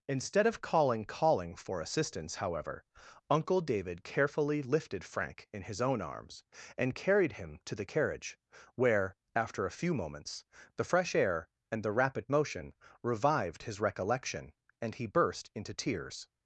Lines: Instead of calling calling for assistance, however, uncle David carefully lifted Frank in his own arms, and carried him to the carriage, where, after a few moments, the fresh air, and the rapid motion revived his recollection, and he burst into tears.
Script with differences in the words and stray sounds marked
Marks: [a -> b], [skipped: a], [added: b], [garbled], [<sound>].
Instead of calling calling for assistance, however, uncle David carefully lifted Frank in his own arms, and carried him to the carriage, where, after a few moments, the fresh air, and the rapid motion revived his recollection, and he burst into tears.